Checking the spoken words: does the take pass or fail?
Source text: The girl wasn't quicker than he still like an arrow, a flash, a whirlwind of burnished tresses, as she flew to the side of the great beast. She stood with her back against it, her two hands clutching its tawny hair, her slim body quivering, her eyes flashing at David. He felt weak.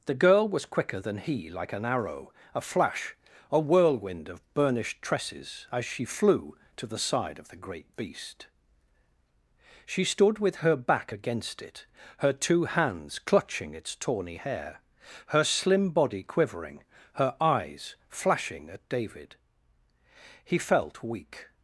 fail